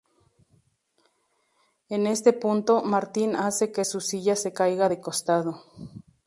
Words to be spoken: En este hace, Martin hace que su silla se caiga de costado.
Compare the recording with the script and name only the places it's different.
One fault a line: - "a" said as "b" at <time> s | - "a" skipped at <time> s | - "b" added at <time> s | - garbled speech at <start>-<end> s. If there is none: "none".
- "hace" said as "punto" at 2.3 s